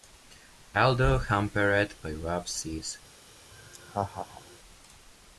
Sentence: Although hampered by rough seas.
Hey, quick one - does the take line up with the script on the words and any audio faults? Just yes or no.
no